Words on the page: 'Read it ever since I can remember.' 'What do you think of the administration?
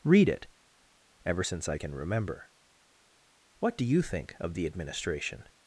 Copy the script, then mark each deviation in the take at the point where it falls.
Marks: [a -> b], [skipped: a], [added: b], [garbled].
'Read it ever since I can remember.' 'What do you think of the administration?